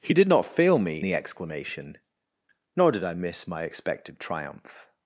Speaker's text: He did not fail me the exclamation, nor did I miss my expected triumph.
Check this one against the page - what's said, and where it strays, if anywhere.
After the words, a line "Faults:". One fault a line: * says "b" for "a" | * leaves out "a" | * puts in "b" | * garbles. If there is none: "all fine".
He did not fail me the exclamation, nor did I miss my expected triumph.
Faults:
all fine